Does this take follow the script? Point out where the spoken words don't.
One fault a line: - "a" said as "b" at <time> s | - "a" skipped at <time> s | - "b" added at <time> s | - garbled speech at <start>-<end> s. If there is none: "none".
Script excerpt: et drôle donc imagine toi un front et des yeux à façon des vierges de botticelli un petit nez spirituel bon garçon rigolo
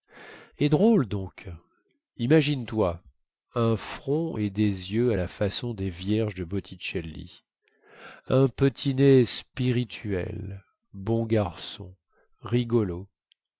- "la" added at 5.1 s